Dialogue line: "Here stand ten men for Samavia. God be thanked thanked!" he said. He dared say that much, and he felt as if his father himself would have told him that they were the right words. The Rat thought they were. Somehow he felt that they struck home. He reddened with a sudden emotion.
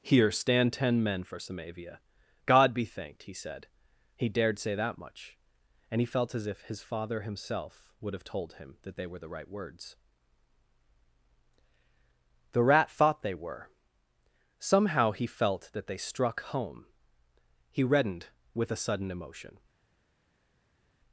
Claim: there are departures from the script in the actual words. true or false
true